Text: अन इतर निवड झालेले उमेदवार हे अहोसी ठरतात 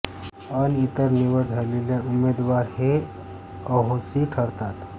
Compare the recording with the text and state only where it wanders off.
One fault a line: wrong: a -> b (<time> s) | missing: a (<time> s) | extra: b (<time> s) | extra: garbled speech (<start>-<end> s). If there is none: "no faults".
no faults